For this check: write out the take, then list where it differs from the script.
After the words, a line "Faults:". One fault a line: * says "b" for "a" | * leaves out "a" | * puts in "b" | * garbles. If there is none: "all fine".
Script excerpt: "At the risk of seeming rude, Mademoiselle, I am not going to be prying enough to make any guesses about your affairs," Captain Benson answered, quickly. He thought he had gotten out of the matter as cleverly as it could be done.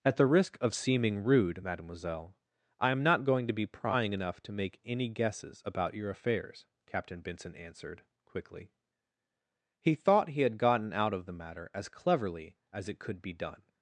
"At the risk of seeming rude, Mademoiselle, I am not going to be prying enough to make any guesses about your affairs," Captain Benson answered, quickly. He thought he had gotten out of the matter as cleverly as it could be done.
Faults:
all fine